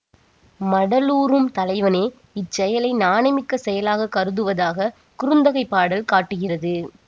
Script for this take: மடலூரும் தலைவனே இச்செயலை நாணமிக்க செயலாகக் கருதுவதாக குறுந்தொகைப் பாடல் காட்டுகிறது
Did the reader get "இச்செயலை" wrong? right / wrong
right